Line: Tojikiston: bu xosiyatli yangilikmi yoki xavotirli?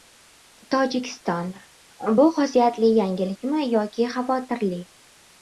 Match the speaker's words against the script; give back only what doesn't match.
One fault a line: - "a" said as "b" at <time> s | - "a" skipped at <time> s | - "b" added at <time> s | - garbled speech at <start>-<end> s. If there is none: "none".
none